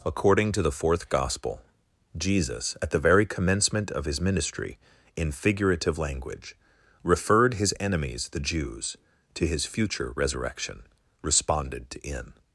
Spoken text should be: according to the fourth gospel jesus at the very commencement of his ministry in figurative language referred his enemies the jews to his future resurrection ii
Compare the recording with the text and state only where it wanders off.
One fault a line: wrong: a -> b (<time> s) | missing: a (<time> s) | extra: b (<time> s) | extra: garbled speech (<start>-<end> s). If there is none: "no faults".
wrong: ii -> responded to in (11.2 s)